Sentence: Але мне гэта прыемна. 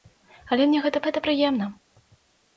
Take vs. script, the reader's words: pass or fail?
fail